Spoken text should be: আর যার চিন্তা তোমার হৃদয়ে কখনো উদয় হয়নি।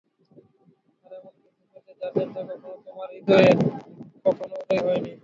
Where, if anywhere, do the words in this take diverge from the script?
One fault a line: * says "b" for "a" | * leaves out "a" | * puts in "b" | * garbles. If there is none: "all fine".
* puts in "এমন কিছু পেতে"
* puts in "কখনো"